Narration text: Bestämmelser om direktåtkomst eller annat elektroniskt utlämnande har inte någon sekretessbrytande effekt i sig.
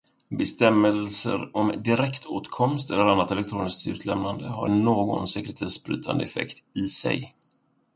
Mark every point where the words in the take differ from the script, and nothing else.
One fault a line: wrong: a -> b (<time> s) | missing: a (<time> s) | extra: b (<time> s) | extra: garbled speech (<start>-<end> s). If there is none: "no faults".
missing: inte (4.7 s)